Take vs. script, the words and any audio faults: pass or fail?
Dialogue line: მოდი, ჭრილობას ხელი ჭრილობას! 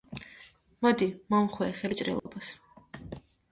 fail